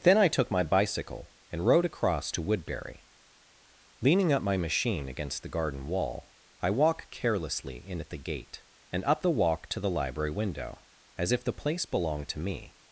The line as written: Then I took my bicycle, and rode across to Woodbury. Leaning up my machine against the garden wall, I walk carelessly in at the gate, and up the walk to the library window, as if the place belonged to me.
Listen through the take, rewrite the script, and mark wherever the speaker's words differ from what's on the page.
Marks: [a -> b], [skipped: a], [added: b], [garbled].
Then I took my bicycle, and rode across to Woodbury. Leaning up my machine against the garden wall, I walk carelessly in at the gate, and up the walk to the library window, as if the place belonged to me.